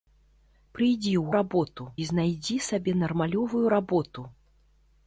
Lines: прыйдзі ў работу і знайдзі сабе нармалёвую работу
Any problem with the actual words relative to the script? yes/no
no